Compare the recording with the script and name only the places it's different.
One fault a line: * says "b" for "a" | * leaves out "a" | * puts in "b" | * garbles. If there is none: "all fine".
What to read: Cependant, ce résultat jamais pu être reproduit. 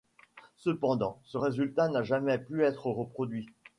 * puts in "n'a"